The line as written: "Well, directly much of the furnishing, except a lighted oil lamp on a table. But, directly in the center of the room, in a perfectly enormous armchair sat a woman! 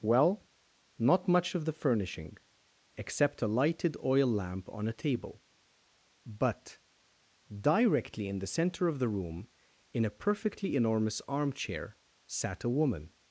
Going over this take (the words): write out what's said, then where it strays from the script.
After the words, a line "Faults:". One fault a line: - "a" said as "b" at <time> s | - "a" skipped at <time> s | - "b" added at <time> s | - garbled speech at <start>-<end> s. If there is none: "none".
"Well, not much of the furnishing, except a lighted oil lamp on a table. But, directly in the center of the room, in a perfectly enormous armchair sat a woman!
Faults:
- "directly" said as "not" at 1.0 s